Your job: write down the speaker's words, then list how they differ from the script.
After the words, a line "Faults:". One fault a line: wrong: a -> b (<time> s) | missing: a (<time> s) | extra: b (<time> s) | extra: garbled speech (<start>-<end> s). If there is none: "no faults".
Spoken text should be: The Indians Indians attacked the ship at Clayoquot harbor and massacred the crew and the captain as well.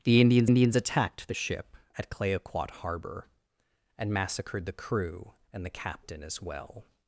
The Indians Indians attacked the ship at Clayoquot harbor and massacred the crew and the captain as well.
Faults:
no faults